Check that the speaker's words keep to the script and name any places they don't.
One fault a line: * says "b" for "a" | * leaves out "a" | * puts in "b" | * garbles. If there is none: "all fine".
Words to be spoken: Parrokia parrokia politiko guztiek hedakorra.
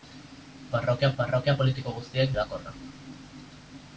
all fine